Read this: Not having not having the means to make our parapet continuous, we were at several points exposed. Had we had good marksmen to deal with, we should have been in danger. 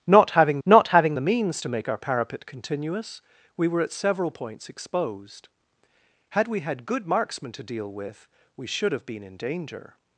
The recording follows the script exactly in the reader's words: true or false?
true